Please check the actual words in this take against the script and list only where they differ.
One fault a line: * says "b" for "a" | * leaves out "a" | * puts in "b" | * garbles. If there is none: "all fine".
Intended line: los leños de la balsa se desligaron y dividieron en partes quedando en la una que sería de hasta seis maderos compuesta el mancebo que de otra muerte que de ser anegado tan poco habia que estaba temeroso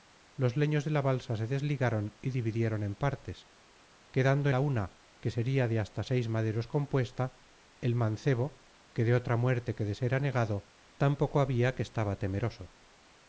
* leaves out "en"